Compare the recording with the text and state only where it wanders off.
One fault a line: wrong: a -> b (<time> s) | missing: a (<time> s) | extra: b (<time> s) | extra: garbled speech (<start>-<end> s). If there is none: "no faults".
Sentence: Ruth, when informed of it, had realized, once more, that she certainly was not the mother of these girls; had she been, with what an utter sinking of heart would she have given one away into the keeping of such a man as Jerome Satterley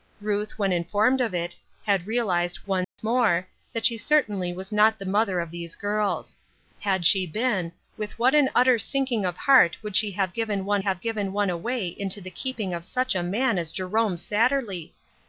extra: have given one (10.8 s)